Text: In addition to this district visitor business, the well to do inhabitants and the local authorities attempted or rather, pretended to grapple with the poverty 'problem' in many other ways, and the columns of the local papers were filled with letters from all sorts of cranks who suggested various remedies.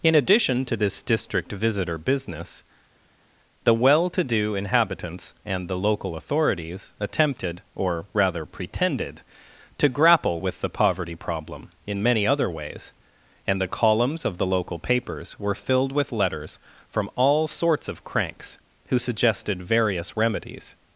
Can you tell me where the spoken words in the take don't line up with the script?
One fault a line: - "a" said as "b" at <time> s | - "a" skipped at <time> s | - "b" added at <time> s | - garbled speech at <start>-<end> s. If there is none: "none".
none